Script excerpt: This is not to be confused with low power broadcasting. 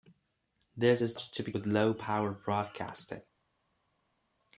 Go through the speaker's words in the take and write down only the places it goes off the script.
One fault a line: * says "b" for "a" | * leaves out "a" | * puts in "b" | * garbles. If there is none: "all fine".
* leaves out "not"
* leaves out "confused"